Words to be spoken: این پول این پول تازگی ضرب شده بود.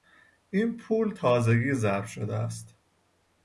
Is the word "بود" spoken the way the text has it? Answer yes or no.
no